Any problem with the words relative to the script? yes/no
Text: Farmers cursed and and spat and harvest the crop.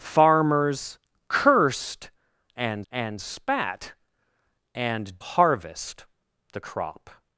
no